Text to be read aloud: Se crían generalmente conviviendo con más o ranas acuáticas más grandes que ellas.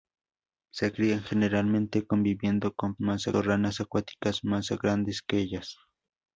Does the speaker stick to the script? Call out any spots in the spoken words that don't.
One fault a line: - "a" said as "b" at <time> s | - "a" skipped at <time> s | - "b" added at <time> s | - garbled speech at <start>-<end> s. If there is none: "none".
none